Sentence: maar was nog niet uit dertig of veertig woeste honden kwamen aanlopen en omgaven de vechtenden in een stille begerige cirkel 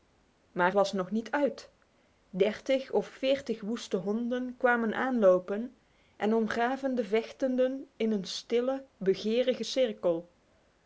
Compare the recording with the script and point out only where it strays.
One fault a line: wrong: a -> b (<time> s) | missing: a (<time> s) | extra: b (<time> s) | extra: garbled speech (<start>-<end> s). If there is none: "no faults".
no faults